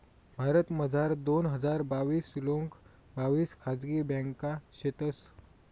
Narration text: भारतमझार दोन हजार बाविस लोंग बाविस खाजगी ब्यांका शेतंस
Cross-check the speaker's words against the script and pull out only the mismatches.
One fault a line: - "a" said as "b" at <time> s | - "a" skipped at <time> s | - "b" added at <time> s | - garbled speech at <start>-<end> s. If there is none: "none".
none